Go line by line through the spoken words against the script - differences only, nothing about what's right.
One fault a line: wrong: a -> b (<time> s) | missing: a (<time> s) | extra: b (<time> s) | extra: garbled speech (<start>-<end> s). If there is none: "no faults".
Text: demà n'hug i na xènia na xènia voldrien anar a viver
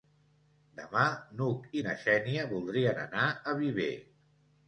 missing: na xènia (2.4 s)